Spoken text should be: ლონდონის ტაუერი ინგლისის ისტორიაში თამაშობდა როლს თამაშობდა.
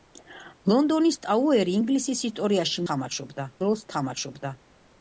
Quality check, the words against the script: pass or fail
pass